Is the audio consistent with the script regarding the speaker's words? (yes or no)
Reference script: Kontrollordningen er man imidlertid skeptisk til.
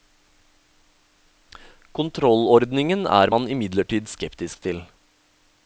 yes